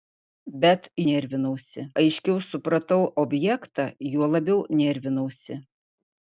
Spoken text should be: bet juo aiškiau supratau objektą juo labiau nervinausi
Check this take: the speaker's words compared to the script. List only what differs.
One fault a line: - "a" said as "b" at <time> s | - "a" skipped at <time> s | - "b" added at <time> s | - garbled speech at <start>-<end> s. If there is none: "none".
- "juo" said as "nervinausi" at 1.1 s